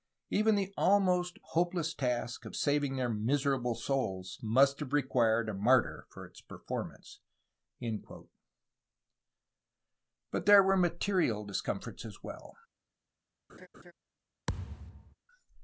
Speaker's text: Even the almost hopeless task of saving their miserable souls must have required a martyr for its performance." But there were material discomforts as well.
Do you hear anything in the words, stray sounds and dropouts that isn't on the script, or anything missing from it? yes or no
yes